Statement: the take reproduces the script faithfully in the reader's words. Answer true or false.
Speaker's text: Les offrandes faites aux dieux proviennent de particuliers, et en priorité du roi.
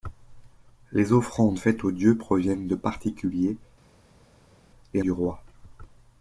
false